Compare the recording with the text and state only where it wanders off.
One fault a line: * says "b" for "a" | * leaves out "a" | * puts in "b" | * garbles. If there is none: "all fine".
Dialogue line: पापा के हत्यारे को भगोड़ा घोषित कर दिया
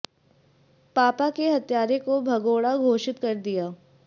all fine